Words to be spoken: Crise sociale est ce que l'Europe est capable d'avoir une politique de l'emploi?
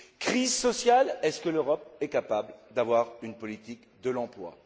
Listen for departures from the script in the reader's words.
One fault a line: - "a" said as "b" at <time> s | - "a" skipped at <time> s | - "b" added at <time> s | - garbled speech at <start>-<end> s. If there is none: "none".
none